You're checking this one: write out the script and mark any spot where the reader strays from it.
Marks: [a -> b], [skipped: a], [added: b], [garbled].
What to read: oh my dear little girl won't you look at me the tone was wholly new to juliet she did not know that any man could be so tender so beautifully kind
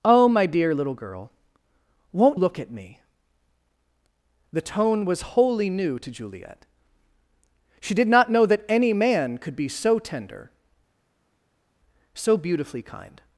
oh my dear little girl won't [skipped: you] look at me the tone was wholly new to juliet she did not know that any man could be so tender so beautifully kind